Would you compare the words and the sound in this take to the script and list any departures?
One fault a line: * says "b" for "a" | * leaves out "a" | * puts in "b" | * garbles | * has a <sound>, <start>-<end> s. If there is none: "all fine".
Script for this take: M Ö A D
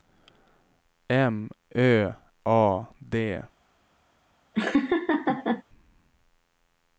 * has a laugh, 4.5-5.6 s